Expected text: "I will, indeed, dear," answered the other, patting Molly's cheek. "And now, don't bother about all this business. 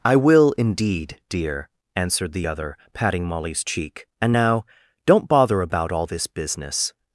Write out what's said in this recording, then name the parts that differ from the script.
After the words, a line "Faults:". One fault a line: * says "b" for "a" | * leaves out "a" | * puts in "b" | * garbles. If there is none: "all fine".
"I will, indeed, dear," answered the other, patting Molly's cheek. "And now, don't bother about all this business.
Faults:
all fine